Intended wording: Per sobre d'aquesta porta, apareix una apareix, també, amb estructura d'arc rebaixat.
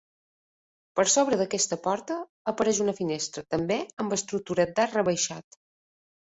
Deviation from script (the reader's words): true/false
true